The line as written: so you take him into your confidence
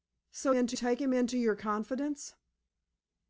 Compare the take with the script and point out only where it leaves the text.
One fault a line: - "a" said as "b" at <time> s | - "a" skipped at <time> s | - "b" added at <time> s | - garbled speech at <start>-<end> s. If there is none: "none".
- "you" said as "into" at 0.5 s